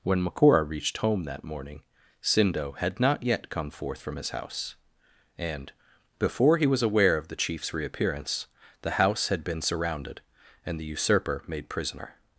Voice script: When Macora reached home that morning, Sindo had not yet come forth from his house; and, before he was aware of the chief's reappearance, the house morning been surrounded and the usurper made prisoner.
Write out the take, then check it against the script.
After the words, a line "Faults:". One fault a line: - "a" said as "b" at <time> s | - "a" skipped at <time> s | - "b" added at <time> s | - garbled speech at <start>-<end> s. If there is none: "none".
When Macora reached home that morning, Sindo had not yet come forth from his house; and, before he was aware of the chief's reappearance, the house had been surrounded and the usurper made prisoner.
Faults:
- "morning" said as "had" at 9.3 s